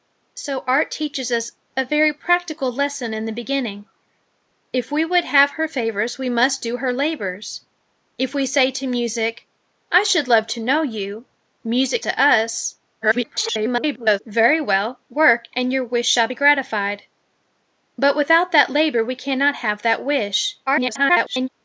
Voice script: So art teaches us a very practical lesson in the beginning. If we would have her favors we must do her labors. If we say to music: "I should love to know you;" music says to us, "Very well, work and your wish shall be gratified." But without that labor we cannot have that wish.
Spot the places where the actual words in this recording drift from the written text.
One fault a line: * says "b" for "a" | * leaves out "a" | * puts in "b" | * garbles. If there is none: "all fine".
* leaves out "says"
* garbles
* garbles